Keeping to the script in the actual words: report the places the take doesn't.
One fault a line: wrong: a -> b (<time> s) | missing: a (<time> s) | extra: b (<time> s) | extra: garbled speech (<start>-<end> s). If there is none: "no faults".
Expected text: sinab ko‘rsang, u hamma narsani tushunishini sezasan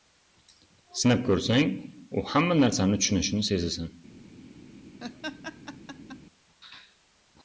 no faults